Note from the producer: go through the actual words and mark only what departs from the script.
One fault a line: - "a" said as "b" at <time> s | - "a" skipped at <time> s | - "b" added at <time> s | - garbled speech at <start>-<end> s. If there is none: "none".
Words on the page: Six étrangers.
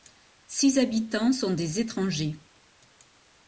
- "habitants sont des" added at 0.8 s